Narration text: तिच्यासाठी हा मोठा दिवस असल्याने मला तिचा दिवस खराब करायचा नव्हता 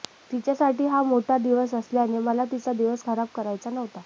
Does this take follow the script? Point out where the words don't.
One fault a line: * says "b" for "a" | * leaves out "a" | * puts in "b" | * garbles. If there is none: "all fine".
all fine